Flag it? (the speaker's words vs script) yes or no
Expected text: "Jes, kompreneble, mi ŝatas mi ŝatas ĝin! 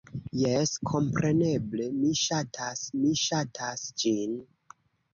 no